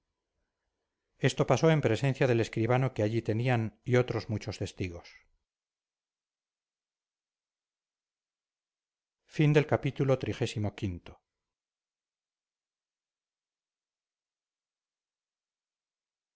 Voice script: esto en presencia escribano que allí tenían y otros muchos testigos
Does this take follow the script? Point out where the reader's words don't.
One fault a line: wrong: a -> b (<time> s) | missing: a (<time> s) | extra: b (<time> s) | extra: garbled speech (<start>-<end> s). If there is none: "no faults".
extra: pasó (1.4 s)
extra: del (2.3 s)